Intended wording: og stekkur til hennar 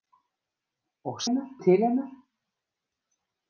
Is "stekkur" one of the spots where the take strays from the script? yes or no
yes